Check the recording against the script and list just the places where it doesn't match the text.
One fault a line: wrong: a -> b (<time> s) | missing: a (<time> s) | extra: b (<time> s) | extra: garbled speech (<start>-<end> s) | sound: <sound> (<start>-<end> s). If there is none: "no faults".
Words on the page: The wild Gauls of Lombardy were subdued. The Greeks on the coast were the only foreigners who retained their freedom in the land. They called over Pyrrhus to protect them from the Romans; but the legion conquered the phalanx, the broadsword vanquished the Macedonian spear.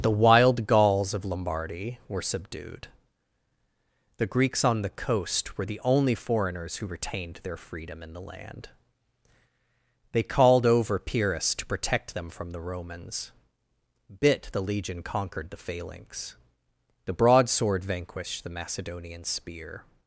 wrong: but -> bit (14.2 s)